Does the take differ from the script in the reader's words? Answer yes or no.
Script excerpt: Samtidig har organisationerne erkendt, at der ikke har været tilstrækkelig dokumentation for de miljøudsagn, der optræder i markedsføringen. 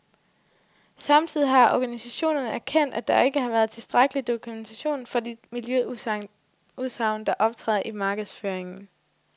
no